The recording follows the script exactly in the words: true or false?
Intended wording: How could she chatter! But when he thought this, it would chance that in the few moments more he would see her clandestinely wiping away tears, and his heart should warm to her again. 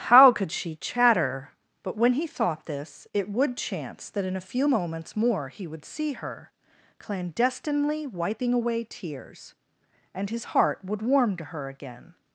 false